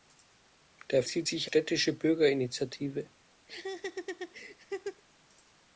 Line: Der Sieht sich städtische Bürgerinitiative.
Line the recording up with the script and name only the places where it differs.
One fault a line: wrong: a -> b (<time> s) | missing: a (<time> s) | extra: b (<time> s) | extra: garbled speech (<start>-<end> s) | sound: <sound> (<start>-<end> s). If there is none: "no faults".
sound: laugh (3.5-5.0 s)